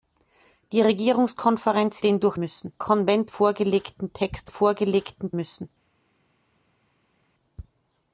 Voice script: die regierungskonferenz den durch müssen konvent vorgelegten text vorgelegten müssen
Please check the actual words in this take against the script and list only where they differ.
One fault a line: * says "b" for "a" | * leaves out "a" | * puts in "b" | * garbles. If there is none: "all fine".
all fine